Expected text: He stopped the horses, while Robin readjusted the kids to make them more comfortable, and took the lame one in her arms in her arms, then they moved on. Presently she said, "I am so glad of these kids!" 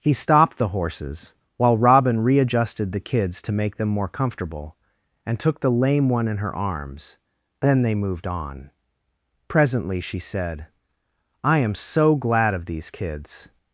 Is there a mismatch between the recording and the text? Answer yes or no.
yes